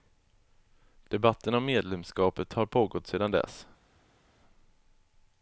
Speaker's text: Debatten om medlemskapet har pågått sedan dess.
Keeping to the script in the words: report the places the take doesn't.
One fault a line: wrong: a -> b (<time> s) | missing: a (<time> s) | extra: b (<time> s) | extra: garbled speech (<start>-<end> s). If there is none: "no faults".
no faults